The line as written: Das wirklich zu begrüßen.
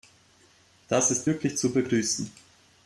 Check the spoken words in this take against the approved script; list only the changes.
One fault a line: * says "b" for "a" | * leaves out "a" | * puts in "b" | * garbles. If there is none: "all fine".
* puts in "ist"